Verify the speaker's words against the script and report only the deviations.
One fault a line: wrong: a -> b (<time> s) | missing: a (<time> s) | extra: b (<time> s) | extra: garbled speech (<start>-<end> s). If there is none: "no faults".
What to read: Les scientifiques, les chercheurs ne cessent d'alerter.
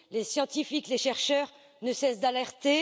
no faults